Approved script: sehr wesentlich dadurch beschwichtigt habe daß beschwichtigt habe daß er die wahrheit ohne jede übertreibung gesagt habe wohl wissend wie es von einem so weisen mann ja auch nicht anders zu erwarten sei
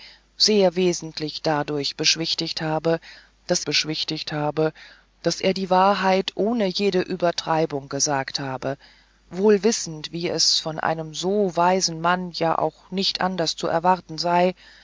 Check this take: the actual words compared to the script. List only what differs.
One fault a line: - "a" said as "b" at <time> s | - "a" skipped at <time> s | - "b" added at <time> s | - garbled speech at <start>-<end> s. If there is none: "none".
none